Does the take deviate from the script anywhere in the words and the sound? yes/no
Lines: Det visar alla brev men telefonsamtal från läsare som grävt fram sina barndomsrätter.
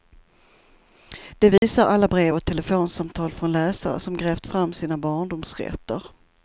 yes